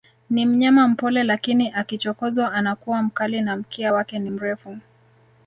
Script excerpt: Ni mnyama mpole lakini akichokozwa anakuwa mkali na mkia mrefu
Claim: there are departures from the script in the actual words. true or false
true